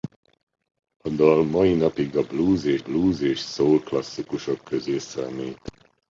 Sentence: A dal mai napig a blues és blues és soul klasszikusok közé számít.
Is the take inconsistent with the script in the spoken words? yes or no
no